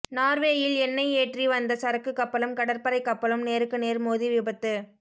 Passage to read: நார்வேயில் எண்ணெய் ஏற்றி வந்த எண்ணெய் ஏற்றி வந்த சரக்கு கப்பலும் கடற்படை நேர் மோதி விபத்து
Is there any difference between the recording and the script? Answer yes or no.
yes